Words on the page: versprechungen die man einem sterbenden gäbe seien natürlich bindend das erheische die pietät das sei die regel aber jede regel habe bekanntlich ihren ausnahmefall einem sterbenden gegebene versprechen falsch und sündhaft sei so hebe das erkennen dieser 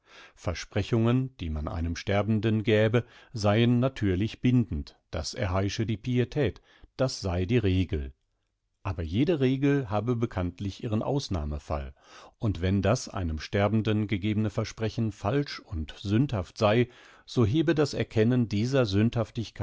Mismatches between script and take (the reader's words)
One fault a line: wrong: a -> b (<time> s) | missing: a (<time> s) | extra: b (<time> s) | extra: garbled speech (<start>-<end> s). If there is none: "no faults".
extra: und wenn das (12.4 s)